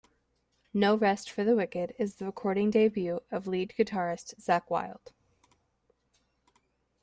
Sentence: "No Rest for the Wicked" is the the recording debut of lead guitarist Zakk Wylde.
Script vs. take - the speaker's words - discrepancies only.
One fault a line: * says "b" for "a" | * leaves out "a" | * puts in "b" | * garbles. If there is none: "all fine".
* leaves out "the"